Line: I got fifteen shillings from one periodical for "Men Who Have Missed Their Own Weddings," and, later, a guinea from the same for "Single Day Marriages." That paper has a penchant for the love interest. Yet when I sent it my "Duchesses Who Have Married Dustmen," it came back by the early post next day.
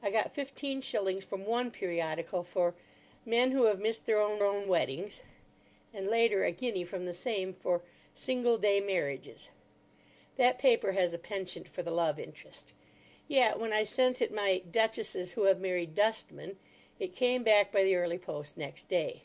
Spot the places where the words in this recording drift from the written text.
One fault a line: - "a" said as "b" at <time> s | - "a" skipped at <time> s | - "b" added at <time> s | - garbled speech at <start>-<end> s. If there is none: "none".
- "Own" added at 4.4 s